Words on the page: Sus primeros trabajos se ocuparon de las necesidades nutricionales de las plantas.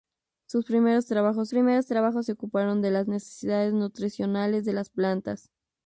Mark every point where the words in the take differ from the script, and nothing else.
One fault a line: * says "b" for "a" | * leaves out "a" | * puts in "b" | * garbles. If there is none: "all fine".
* puts in "primeros trabajos"